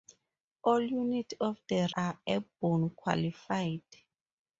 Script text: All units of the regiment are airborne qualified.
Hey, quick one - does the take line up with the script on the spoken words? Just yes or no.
no